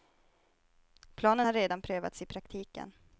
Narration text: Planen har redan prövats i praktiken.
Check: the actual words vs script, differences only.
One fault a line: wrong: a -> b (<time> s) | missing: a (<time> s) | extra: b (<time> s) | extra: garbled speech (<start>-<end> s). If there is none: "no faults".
no faults